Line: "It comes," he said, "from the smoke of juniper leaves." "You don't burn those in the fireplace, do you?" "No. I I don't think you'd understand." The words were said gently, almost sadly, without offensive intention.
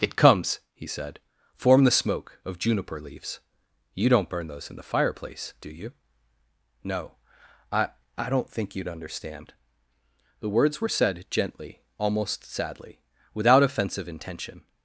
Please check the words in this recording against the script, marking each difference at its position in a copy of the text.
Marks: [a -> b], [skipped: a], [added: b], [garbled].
"It comes," he said, ["from -> form] the smoke of juniper leaves." "You don't burn those in the fireplace, do you?" "No. I I don't think you'd understand." The words were said gently, almost sadly, without offensive intention.